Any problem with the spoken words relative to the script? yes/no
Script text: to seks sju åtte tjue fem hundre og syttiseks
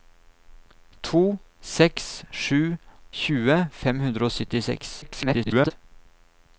yes